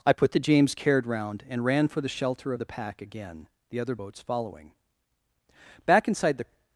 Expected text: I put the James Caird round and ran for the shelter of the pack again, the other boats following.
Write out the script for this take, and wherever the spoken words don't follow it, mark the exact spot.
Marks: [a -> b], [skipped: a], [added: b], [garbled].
I put the James Caird round and ran for the shelter of the pack again, the other boats following. [added: Back inside the]